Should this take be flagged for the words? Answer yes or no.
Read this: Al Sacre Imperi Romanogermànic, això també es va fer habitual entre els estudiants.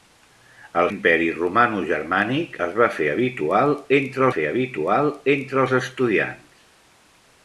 yes